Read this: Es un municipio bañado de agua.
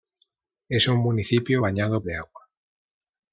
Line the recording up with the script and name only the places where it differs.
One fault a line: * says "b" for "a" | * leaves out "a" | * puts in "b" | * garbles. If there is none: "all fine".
all fine